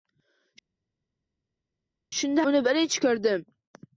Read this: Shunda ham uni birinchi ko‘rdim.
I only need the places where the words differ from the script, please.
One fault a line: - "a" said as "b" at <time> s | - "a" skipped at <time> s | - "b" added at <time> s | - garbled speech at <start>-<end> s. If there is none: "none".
- "ham" skipped at 2.5 s